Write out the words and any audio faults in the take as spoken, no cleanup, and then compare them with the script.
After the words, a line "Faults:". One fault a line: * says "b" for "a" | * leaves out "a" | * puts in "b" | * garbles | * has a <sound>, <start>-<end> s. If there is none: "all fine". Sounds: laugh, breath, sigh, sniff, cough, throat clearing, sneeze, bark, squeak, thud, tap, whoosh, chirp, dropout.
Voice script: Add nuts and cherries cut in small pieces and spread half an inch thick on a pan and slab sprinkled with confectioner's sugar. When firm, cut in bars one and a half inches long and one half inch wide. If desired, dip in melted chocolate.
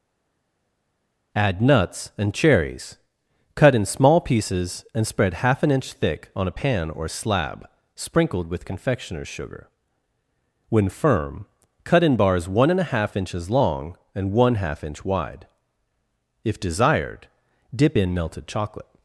Add nuts and cherries cut in small pieces and spread half an inch thick on a pan or slab sprinkled with confectioner's sugar. When firm, cut in bars one and a half inches long and one half inch wide. If desired, dip in melted chocolate.
Faults:
* says "or" for "and"